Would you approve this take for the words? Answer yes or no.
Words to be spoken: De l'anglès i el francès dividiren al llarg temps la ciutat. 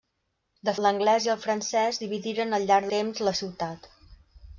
yes